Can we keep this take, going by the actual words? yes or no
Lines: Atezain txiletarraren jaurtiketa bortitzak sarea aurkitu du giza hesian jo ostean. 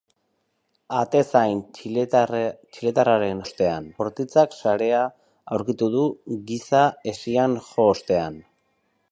no